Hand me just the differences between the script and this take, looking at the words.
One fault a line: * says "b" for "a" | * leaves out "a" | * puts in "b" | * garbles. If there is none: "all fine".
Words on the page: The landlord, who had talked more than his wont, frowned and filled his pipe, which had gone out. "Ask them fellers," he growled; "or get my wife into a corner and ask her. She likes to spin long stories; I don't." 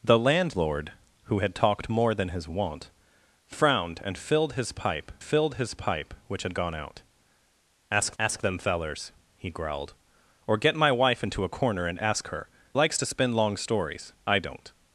* puts in "filled his pipe"
* puts in "ask"
* leaves out "She"